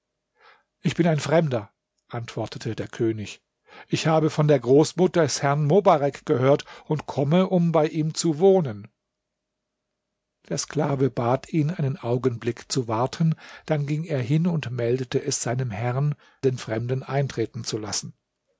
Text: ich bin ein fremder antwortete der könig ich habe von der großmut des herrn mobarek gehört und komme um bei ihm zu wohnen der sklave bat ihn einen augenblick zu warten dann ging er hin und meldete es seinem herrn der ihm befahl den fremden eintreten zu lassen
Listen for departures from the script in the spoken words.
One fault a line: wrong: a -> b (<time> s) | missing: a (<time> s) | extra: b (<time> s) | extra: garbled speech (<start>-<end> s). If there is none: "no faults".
missing: der ihm befahl (16.1 s)